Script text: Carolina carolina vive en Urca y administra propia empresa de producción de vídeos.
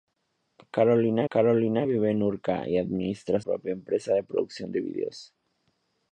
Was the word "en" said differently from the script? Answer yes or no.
no